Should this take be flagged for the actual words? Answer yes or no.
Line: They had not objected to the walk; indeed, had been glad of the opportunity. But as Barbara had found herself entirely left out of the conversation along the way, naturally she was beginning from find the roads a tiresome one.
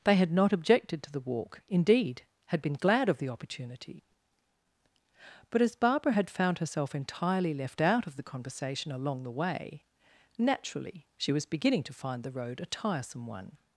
yes